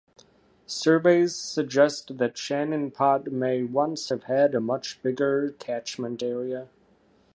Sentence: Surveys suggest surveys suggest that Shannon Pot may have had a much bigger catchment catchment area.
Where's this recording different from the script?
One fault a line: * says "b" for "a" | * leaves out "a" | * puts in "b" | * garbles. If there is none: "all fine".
* leaves out "surveys suggest"
* puts in "once"
* leaves out "catchment"